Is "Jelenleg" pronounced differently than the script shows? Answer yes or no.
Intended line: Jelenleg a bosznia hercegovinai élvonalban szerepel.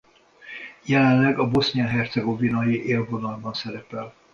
no